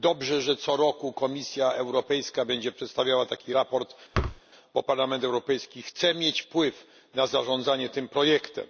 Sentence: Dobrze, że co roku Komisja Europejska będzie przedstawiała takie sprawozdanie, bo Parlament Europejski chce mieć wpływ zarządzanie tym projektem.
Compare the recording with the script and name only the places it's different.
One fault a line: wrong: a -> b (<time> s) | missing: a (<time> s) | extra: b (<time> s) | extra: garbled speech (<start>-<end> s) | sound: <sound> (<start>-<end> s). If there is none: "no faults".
sound: thud (4.1-4.4 s)
extra: na (7.1 s)